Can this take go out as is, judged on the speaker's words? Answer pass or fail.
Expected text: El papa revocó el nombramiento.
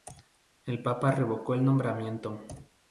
pass